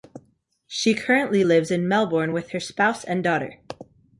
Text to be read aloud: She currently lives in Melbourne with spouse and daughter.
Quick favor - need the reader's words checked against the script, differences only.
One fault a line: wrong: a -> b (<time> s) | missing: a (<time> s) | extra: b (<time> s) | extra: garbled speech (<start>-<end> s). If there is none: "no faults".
extra: her (2.5 s)